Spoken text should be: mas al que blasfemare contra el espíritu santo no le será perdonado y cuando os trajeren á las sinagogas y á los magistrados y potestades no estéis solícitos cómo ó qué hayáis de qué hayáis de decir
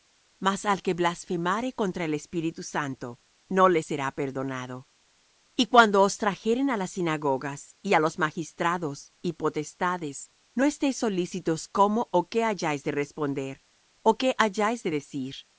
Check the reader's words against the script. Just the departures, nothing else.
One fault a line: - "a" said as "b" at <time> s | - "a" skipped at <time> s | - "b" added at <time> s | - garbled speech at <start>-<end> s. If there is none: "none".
- "responder ó" added at 12.9 s